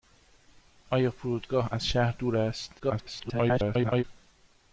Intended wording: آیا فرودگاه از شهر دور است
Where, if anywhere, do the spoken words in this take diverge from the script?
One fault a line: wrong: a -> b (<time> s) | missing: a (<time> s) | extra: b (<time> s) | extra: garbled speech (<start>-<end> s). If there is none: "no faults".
extra: garbled speech (2.8-4.0 s)